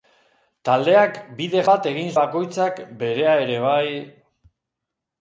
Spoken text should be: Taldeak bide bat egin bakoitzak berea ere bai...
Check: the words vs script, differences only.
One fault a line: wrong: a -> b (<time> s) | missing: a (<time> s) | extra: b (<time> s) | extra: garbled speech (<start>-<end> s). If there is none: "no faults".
no faults